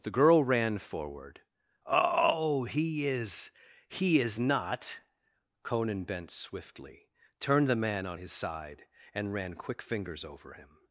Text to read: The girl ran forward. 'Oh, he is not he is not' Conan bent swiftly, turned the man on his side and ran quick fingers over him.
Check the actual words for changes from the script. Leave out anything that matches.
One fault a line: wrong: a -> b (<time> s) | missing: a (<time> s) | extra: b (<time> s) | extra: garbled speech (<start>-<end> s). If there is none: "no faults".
missing: not (3.5 s)